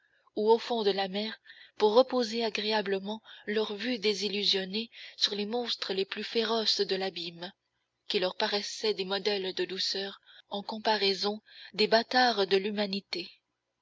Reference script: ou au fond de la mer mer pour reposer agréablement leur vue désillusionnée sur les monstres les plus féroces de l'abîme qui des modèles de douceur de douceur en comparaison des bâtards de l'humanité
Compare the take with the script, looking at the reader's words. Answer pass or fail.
fail